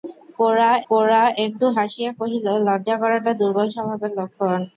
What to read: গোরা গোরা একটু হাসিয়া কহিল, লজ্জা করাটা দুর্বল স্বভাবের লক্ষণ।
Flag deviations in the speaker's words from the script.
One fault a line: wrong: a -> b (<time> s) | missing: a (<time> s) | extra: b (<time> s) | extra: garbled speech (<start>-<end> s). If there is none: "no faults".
no faults